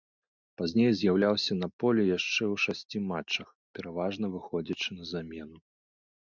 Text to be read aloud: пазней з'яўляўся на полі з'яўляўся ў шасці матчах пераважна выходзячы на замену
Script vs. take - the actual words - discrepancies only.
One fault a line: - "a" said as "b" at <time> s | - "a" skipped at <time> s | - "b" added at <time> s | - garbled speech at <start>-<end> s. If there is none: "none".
- "з'яўляўся" said as "яшчэ" at 2.2 s